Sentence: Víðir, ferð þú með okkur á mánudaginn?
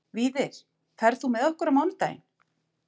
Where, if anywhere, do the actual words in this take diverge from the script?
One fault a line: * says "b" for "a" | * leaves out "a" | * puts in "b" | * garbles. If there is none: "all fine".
all fine